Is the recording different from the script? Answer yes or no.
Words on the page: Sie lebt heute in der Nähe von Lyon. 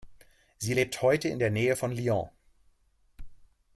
no